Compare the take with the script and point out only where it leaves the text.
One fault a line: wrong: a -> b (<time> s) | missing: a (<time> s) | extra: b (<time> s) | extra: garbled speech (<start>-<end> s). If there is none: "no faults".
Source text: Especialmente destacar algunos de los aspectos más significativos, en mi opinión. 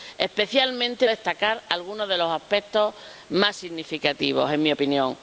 no faults